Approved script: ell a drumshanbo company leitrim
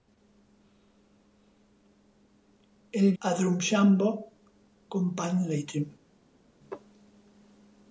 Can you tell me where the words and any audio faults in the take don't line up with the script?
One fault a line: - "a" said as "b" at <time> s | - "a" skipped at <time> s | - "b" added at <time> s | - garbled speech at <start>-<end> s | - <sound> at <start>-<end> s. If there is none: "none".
none